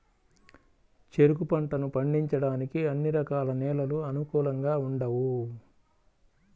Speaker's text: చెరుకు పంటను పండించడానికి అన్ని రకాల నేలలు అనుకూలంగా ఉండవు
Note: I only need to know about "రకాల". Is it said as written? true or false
true